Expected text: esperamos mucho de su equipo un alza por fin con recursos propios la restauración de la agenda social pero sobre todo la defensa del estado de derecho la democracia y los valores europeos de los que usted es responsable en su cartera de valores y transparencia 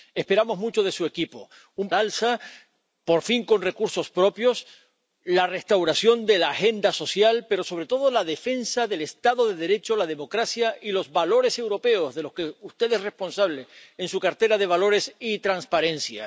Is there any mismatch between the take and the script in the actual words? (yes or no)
no